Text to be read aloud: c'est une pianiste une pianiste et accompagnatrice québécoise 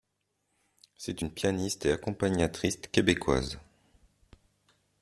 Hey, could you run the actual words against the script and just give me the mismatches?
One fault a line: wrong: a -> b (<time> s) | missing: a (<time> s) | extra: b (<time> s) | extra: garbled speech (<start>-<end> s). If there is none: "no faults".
missing: une pianiste (1.9 s)